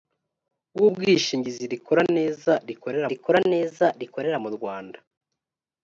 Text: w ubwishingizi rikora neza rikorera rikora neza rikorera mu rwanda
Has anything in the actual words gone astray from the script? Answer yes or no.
no